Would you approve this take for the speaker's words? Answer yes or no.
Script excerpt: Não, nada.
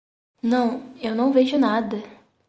no